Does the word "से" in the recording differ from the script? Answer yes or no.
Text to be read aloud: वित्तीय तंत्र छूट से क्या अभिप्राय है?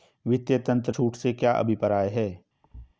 no